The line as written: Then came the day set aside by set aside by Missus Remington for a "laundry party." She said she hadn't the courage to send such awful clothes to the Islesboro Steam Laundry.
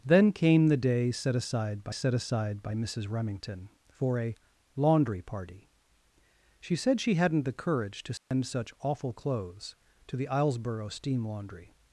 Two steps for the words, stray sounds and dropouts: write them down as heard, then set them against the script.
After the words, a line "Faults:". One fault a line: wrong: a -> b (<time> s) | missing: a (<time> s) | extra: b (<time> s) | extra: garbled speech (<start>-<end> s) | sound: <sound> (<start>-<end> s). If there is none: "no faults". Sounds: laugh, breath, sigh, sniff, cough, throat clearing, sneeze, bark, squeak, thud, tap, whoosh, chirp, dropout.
Then came the day set aside by set aside by Missus Remington for a "laundry party." She said she hadn't the courage to send such awful clothes to the Islesboro Steam Laundry.
Faults:
sound: dropout (8.2-8.3 s)